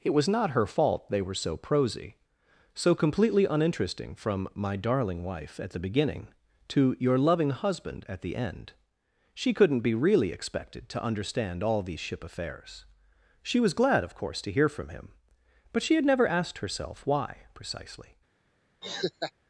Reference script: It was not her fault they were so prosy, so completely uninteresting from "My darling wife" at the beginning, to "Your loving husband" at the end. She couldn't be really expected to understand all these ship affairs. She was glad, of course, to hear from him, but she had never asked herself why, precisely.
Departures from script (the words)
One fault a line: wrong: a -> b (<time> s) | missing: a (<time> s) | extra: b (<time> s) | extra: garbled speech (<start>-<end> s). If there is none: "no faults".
no faults